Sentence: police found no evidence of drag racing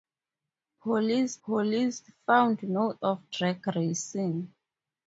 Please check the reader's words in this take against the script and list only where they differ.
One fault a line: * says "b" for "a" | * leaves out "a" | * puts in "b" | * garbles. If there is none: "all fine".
* puts in "police"
* leaves out "evidence"